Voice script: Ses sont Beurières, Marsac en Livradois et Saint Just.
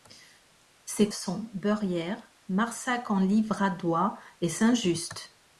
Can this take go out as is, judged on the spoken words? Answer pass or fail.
pass